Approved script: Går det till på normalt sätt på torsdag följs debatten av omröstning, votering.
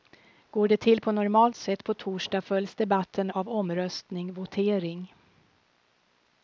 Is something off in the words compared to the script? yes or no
no